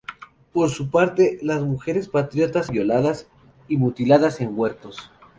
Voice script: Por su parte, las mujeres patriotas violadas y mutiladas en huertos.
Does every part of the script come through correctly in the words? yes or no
yes